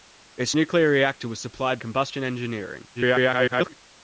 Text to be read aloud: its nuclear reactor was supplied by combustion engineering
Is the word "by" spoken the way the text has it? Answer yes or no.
no